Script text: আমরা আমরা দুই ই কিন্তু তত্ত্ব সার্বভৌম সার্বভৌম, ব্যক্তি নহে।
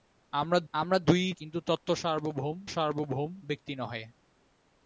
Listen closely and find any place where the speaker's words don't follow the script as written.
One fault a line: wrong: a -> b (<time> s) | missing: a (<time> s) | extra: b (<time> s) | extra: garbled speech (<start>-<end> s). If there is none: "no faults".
no faults